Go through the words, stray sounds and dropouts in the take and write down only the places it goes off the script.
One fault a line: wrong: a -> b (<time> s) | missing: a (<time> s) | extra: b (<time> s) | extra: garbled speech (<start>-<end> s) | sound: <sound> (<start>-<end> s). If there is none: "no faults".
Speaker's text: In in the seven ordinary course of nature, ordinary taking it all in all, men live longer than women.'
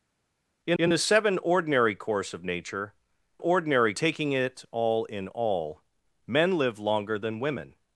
no faults